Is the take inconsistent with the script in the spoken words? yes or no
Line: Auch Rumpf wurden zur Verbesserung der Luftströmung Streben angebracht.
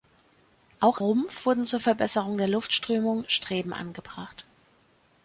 no